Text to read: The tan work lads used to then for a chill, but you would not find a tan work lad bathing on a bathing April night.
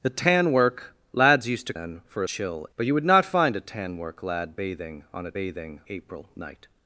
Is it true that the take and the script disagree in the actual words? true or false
false